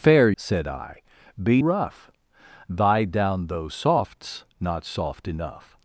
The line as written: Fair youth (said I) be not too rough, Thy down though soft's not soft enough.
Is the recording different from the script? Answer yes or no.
yes